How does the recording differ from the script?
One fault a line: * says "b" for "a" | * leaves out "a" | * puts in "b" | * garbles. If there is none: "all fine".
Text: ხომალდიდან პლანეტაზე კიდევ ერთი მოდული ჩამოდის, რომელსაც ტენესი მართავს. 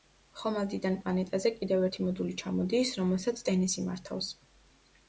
all fine